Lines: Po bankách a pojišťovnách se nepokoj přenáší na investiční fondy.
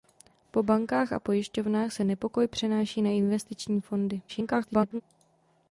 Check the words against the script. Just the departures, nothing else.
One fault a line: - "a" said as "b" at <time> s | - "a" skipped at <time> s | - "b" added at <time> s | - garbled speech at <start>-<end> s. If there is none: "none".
- garbled speech at 4.3-5.0 s